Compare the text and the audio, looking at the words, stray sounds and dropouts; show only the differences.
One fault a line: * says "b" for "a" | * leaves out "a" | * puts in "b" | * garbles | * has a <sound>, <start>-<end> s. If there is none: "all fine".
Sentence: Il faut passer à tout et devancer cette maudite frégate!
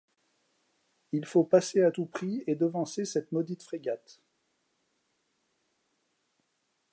* puts in "prix"